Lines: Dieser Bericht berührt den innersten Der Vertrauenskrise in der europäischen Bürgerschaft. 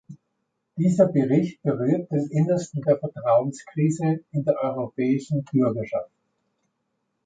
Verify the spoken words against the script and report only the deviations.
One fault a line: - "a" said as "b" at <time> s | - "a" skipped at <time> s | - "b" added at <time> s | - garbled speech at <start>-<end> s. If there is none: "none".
none